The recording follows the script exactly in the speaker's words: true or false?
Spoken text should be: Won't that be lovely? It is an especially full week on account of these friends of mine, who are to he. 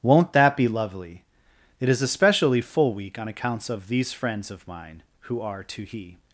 false